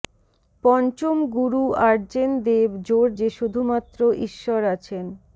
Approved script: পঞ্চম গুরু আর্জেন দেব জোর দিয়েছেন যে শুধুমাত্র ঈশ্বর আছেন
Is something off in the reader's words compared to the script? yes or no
yes